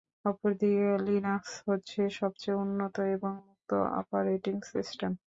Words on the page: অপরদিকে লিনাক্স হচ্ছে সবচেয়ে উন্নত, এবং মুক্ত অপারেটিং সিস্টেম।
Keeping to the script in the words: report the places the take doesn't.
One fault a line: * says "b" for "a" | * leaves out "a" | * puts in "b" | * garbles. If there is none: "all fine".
all fine